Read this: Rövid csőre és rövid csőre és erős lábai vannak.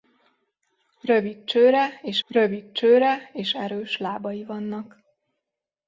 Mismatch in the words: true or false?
false